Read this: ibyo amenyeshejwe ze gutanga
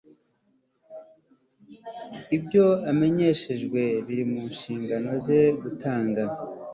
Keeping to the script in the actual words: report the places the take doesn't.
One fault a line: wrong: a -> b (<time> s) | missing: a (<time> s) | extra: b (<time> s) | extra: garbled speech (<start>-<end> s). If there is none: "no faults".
extra: biri mu nshingano (4.0 s)